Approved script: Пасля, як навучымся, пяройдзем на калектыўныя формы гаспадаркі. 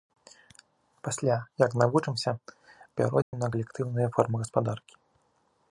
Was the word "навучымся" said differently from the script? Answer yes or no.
no